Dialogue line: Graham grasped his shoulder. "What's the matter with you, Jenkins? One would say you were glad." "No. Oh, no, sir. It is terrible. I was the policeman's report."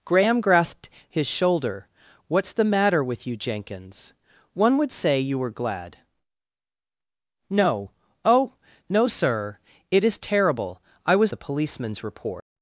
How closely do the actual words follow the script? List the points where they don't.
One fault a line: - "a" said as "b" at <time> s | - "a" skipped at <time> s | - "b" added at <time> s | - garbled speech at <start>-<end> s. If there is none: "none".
none